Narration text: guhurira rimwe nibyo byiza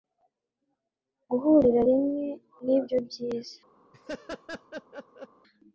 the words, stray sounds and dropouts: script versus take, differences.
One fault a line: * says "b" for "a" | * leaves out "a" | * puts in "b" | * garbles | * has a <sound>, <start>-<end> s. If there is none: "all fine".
* has a laugh, 3.9-5.3 s